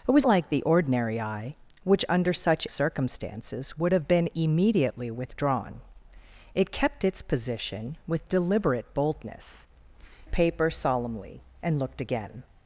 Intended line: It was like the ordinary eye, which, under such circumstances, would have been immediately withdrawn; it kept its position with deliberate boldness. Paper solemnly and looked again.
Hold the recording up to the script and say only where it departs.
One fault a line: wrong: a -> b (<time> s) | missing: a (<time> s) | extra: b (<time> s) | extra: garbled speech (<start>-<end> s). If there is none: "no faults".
no faults